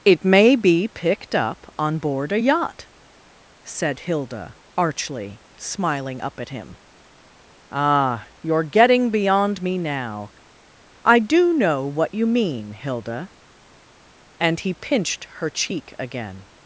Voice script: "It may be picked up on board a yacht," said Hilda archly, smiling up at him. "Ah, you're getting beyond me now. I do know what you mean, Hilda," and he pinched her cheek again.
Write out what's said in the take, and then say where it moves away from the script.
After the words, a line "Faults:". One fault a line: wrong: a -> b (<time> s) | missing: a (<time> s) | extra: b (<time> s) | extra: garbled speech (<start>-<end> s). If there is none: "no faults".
"It may be picked up on board a yacht," said Hilda archly, smiling up at him. "Ah, you're getting beyond me now. I do know what you mean, Hilda," and he pinched her cheek again.
Faults:
no faults